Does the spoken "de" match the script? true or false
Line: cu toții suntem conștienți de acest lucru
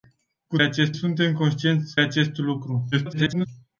false